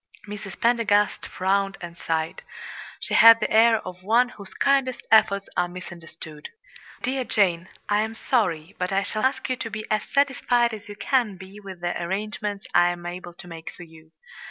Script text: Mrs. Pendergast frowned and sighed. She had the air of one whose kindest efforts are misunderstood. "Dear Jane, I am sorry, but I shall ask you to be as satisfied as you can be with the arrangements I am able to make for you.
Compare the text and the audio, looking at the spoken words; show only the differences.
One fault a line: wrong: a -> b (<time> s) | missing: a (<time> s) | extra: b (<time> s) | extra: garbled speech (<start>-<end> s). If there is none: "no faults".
no faults